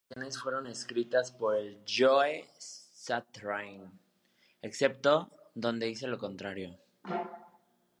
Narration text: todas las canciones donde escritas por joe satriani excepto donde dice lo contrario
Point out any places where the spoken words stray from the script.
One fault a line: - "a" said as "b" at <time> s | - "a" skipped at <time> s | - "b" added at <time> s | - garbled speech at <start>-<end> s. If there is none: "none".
- "donde" said as "fueron" at 0.4 s